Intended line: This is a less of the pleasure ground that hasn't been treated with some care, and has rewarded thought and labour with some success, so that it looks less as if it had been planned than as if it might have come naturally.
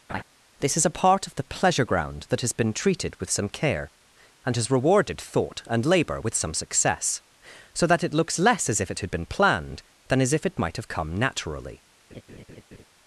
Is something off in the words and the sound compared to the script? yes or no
yes